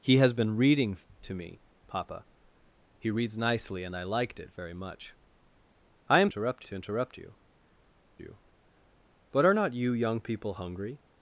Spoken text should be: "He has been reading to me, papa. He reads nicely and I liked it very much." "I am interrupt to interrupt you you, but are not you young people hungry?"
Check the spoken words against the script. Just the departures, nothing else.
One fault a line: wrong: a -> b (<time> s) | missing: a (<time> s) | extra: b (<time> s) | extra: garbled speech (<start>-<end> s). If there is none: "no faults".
no faults